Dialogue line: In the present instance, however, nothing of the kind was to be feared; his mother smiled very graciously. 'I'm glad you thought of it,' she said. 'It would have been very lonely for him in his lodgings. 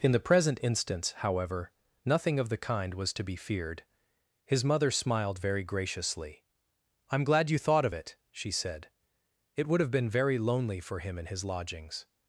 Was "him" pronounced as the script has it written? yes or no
yes